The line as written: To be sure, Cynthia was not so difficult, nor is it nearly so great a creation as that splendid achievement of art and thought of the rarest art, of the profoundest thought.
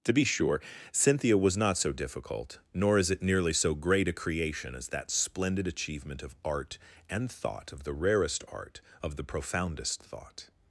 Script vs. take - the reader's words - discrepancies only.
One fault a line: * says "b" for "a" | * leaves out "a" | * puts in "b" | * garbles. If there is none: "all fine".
all fine